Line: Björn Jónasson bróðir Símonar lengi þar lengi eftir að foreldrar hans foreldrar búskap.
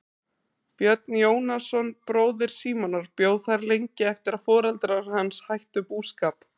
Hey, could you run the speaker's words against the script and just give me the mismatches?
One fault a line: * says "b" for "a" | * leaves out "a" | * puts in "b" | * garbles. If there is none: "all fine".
* says "bjó" for "lengi"
* says "hættu" for "foreldrar"